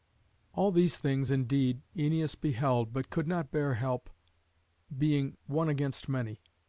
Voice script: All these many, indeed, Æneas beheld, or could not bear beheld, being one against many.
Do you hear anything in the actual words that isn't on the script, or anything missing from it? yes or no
yes